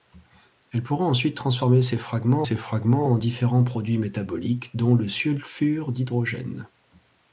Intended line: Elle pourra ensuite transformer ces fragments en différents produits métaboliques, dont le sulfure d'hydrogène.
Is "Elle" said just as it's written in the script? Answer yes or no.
yes